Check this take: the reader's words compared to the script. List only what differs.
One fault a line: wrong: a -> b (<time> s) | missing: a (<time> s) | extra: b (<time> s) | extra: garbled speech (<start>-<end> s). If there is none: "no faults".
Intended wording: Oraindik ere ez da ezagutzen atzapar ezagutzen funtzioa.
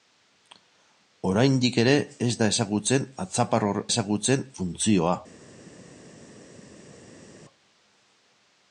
no faults